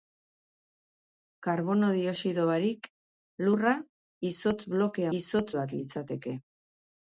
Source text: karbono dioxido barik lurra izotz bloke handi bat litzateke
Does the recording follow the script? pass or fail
fail